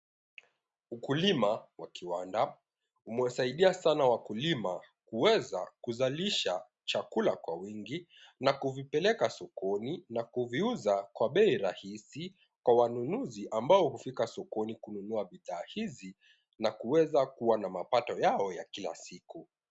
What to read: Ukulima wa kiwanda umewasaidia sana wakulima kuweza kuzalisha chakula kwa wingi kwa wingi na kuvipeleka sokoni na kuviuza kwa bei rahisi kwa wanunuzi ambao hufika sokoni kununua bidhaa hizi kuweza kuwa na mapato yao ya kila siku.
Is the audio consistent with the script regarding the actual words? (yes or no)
no